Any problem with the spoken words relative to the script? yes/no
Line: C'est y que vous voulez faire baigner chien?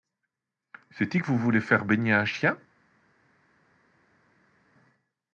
yes